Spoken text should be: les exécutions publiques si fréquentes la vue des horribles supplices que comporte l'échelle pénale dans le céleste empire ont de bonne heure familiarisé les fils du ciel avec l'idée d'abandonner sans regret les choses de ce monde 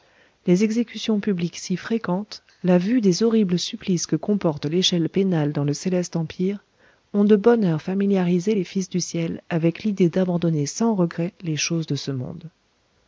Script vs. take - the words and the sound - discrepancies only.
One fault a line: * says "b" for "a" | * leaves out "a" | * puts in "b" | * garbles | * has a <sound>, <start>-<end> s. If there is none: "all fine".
all fine